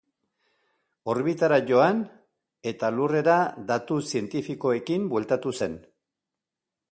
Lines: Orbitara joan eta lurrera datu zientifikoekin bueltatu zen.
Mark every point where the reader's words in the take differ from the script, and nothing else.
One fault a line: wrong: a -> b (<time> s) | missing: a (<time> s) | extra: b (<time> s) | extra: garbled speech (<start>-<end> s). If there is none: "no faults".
no faults